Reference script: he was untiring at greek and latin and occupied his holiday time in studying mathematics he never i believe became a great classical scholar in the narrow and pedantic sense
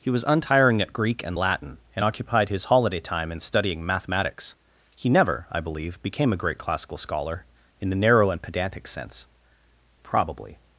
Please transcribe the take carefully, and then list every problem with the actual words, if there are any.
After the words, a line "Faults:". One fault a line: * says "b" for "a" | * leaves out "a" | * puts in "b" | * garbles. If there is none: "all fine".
he was untiring at greek and latin and occupied his holiday time in studying mathematics he never i believe became a great classical scholar in the narrow and pedantic sense probably
Faults:
* puts in "probably"